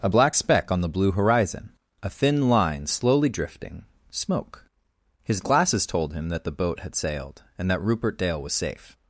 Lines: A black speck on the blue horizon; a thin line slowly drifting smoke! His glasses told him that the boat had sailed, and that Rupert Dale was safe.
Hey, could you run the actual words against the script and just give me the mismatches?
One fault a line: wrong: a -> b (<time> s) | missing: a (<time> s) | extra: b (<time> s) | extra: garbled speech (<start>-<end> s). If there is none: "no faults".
no faults